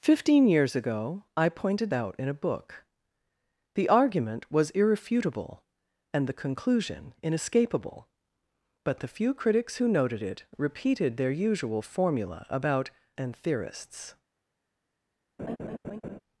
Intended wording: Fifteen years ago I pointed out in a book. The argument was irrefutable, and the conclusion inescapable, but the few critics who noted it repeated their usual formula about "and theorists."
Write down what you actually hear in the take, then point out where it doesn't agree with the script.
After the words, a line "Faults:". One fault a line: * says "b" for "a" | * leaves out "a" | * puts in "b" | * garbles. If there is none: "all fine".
Fifteen years ago I pointed out in a book. The argument was irrefutable, and the conclusion inescapable, but the few critics who noted it repeated their usual formula about "and theorists."
Faults:
all fine